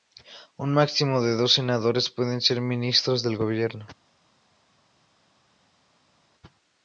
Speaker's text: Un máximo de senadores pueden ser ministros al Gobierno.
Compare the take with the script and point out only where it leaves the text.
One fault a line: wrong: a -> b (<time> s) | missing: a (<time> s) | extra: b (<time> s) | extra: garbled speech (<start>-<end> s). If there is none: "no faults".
extra: dos (1.4 s)
wrong: al -> del (3.2 s)